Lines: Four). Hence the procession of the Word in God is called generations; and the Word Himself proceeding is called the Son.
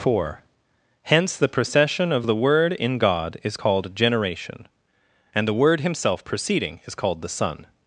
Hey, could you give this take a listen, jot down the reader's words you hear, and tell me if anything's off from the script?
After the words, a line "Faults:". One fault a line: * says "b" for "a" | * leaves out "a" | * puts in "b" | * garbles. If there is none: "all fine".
Four). Hence the procession of the Word in God is called generation; and the Word Himself proceeding is called the Son.
Faults:
* says "generation" for "generations"